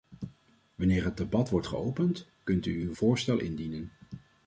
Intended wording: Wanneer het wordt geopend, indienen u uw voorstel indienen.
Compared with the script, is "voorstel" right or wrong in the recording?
right